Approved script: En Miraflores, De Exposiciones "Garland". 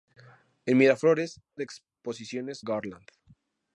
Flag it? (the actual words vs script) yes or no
no